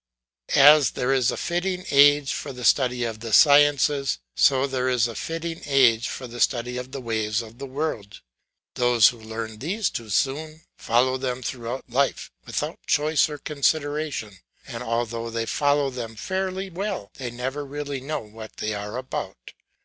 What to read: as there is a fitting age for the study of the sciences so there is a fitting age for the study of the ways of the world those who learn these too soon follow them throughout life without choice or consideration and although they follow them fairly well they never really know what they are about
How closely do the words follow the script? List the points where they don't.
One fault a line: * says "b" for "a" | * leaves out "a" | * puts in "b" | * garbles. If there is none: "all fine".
all fine